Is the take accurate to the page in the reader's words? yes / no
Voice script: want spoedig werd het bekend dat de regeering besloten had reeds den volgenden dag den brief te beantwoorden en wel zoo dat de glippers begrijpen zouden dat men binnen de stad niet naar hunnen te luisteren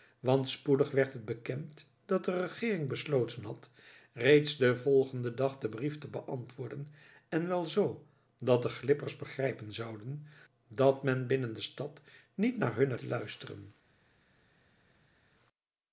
yes